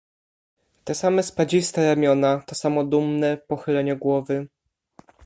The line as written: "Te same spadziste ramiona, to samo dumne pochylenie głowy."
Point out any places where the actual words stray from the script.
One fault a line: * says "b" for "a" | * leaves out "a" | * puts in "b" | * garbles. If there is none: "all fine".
all fine